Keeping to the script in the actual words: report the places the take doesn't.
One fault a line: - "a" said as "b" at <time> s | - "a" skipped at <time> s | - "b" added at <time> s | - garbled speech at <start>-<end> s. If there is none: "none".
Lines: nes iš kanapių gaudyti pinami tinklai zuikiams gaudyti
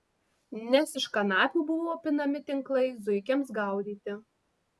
- "gaudyti" said as "buvo" at 1.7 s